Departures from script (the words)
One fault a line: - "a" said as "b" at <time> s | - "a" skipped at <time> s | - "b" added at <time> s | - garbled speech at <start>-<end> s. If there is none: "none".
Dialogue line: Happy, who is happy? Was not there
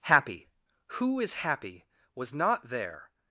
none